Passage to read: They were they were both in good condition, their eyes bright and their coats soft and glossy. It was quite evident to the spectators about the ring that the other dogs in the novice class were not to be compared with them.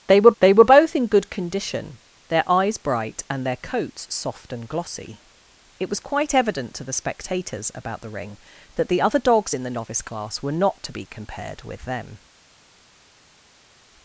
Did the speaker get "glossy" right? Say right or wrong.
right